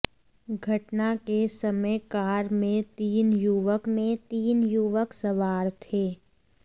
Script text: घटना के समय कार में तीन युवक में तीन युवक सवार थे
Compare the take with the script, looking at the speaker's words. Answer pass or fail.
pass